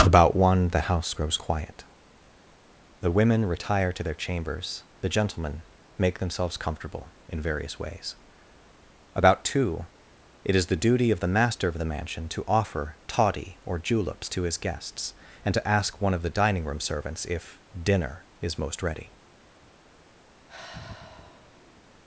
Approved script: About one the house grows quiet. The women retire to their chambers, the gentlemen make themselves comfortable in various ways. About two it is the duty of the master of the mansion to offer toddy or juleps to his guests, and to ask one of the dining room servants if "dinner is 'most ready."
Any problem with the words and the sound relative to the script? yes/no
yes